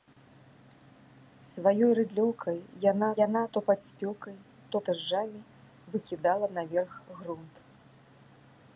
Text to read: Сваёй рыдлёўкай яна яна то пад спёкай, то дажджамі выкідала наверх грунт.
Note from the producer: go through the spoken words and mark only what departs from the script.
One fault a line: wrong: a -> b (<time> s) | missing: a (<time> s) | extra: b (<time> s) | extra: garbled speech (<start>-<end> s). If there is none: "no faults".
no faults